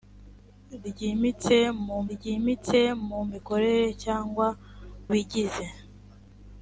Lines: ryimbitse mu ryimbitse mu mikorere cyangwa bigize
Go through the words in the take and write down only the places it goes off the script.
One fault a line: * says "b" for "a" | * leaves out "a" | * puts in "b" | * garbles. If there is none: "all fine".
all fine